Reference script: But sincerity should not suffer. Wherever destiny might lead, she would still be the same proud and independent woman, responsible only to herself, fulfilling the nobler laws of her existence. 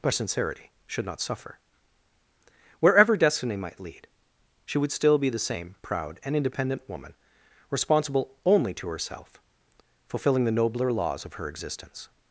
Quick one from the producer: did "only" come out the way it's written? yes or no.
yes